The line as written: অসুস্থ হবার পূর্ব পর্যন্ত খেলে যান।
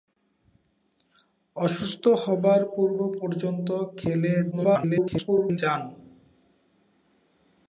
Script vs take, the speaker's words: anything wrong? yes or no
yes